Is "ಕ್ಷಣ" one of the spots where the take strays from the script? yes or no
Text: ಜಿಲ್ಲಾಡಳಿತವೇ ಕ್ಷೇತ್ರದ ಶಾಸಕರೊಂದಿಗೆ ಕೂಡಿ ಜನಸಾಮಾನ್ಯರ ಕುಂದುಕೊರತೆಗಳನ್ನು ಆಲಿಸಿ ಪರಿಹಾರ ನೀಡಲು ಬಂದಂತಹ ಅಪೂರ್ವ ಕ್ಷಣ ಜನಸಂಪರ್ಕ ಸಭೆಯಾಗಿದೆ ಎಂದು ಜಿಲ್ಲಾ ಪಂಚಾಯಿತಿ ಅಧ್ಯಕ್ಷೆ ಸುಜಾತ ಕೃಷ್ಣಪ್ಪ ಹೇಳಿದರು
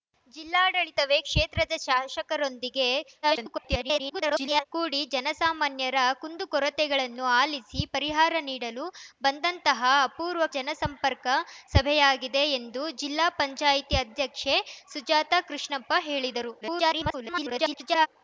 yes